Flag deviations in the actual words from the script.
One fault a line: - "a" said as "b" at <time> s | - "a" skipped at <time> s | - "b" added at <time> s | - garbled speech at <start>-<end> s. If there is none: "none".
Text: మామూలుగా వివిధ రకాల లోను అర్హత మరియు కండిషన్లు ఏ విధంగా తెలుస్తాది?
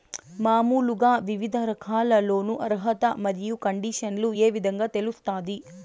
none